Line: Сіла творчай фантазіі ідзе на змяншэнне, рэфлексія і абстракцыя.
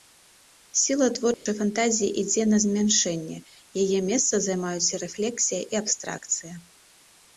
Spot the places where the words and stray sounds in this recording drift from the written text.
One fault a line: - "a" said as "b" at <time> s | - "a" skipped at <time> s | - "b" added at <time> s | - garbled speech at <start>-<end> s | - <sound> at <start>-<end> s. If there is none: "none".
- dropout at 1.3-1.5 s
- "яе месца займаюць" added at 3.8 s